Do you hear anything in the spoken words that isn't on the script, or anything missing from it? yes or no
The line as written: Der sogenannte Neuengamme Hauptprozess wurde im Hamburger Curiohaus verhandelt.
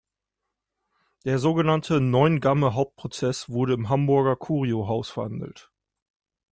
no